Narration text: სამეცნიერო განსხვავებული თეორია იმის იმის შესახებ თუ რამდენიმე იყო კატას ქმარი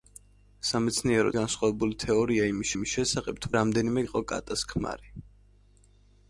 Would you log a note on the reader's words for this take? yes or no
no